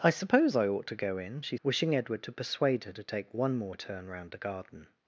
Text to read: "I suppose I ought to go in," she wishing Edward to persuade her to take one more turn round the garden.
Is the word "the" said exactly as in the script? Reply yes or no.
yes